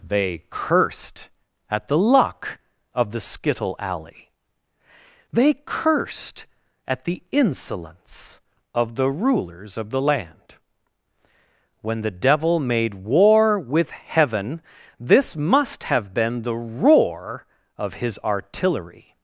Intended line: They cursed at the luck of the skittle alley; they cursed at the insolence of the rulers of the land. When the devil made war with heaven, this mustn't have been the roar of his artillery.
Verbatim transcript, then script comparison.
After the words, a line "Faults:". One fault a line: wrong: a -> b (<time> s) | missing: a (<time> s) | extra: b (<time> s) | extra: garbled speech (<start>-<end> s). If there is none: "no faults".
They cursed at the luck of the skittle alley; they cursed at the insolence of the rulers of the land. When the devil made war with heaven, this must have been the roar of his artillery.
Faults:
wrong: mustn't -> must (15.3 s)